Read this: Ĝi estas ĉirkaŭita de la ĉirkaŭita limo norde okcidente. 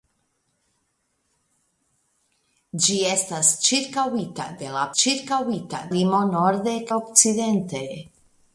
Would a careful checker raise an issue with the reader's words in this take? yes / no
no